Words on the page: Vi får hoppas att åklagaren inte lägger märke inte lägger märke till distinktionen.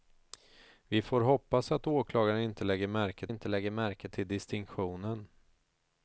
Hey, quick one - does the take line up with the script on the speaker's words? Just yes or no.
yes